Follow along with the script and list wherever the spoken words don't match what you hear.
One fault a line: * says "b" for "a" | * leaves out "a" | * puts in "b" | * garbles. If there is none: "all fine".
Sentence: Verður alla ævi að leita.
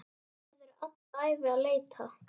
all fine